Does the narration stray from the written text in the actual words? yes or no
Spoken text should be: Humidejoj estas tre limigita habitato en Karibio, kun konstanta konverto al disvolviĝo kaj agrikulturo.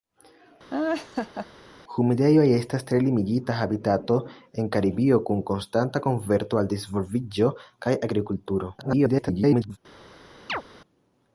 yes